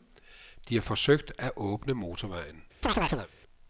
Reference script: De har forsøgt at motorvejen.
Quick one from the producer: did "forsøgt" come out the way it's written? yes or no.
yes